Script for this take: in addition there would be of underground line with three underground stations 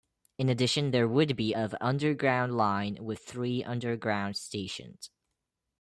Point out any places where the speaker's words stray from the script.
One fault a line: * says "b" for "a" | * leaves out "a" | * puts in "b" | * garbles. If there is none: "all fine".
all fine